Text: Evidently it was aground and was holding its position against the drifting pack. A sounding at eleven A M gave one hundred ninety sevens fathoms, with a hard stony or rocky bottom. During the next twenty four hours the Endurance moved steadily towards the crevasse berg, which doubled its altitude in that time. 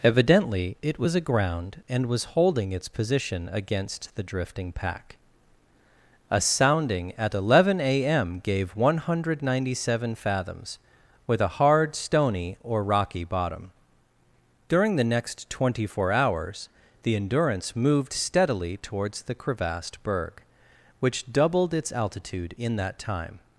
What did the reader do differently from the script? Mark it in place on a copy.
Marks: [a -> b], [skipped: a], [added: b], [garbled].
Evidently it was aground and was holding its position against the drifting pack. A sounding at eleven A M gave one hundred ninety [sevens -> seven] fathoms, with a hard stony or rocky bottom. During the next twenty four hours the Endurance moved steadily towards the [crevasse -> crevassed] berg, which doubled its altitude in that time.